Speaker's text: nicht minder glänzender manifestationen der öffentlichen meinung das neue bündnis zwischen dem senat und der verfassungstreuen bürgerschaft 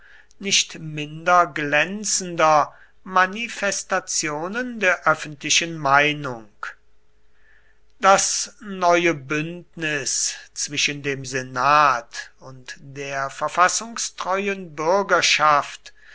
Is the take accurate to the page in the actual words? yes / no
yes